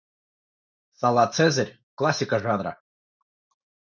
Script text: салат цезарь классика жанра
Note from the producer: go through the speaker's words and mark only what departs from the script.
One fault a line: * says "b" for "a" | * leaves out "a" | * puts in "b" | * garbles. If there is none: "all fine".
all fine